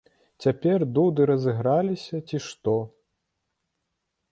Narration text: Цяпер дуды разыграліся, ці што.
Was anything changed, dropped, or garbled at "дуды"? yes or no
no